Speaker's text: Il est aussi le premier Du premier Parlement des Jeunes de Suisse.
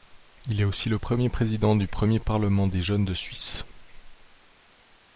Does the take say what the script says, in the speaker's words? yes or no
no